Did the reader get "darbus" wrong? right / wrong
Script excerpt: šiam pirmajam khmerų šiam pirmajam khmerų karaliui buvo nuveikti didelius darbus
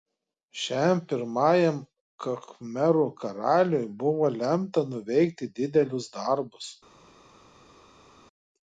right